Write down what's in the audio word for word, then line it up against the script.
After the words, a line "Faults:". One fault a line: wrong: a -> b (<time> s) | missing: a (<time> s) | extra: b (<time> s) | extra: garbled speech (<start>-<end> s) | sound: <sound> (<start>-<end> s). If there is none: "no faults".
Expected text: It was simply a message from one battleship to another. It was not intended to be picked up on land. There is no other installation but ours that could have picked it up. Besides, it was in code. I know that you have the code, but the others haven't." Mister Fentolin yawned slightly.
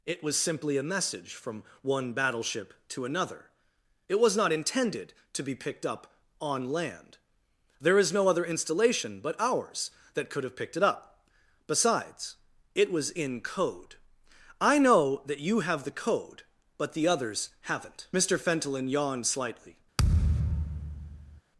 It was simply a message from one battleship to another. It was not intended to be picked up on land. There is no other installation but ours that could have picked it up. Besides, it was in code. I know that you have the code, but the others haven't." Mister Fentolin yawned slightly.
Faults:
sound: thud (20.0-21.4 s)